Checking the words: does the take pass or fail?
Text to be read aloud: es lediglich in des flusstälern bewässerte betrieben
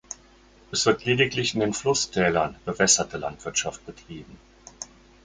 fail